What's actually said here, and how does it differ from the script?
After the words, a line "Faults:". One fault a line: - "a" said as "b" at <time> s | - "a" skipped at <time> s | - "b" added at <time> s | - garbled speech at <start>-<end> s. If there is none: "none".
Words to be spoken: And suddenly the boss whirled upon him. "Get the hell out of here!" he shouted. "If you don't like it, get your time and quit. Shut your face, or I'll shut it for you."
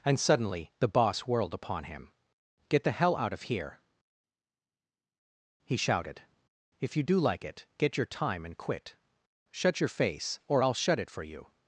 And suddenly the boss whirled upon him. "Get the hell out of here!" he shouted. "If you do like it, get your time and quit. Shut your face, or I'll shut it for you."
Faults:
- "don't" said as "do" at 7.0 s